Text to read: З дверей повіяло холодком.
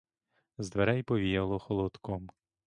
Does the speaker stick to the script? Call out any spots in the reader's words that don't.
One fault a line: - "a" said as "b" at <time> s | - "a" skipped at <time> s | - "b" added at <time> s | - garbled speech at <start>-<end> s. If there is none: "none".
none